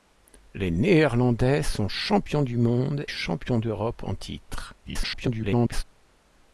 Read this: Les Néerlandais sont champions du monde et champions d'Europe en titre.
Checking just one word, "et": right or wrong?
wrong